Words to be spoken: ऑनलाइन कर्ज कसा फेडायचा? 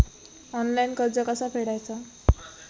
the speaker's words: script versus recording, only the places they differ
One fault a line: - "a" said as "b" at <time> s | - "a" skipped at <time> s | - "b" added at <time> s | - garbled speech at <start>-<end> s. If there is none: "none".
none